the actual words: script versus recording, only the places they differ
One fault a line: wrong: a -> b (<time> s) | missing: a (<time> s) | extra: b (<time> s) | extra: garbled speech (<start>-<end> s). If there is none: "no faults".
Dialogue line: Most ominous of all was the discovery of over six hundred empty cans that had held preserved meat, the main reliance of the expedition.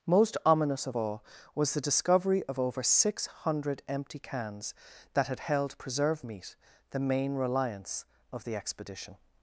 no faults